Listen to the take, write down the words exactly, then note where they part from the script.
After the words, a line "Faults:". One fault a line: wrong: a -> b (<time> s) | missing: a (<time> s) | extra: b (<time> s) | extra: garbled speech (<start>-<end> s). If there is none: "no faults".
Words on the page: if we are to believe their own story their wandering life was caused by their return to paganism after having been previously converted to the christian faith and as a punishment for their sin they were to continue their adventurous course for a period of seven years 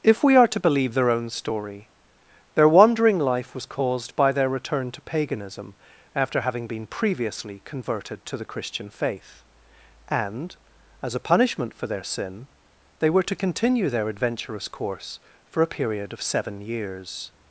if we are to believe their own story their wandering life was caused by their return to paganism after having been previously converted to the christian faith and as a punishment for their sin they were to continue their adventurous course for a period of seven years
Faults:
no faults